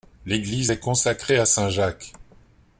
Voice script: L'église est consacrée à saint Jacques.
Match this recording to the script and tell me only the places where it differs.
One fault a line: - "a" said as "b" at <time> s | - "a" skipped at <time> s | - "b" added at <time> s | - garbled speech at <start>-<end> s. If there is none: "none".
none